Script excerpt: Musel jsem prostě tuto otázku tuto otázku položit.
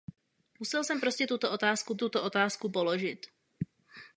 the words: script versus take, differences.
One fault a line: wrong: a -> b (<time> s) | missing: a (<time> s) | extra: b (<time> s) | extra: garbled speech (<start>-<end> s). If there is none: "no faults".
no faults